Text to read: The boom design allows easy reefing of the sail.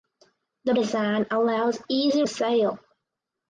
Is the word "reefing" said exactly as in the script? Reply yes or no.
no